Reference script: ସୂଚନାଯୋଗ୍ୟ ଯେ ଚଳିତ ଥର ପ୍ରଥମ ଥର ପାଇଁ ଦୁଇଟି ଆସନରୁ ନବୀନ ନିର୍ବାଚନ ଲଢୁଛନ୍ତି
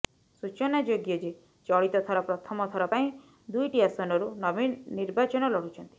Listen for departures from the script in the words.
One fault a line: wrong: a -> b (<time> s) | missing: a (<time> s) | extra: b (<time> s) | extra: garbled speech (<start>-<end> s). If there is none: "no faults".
no faults